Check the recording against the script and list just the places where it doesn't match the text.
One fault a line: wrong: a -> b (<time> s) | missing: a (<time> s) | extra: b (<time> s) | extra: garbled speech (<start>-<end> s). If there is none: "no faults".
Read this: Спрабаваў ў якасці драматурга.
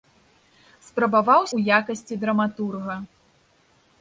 no faults